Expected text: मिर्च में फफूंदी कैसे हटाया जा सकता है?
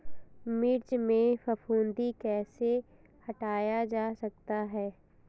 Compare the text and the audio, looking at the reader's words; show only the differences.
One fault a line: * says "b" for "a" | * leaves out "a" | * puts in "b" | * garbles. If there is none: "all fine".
all fine